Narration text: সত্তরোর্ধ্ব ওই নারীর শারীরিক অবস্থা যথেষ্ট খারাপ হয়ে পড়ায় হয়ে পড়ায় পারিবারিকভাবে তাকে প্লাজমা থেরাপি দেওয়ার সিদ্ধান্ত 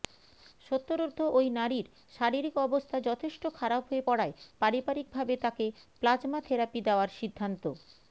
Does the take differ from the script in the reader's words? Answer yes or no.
yes